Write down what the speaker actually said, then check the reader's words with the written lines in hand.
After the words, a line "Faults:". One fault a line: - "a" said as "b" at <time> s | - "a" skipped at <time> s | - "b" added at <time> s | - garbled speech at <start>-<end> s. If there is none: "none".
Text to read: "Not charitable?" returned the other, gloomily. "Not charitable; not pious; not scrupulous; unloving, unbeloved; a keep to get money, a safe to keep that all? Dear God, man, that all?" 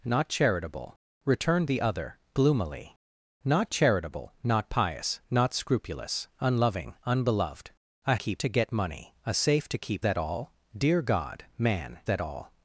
"Not charitable?" returned the other, gloomily. "Not charitable; not pious; not scrupulous; unloving, unbeloved; a keep to get money, a safe to keep that all? Dear God, man, that all?"
Faults:
none